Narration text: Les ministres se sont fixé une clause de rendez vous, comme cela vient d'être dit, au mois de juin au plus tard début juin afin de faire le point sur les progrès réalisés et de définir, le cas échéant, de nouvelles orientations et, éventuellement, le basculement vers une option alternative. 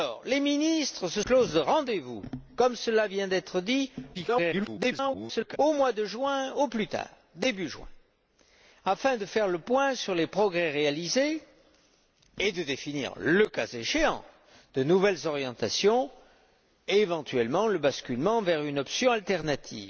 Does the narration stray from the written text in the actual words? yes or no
yes